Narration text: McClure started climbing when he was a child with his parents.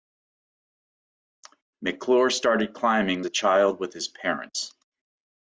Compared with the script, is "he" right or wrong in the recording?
wrong